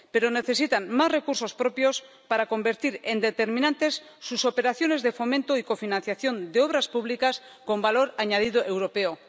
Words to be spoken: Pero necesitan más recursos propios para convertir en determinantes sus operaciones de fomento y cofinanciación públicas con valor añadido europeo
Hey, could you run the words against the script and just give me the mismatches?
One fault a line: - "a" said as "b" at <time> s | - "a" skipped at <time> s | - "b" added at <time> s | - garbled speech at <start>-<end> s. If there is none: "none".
- "de obras" added at 6.5 s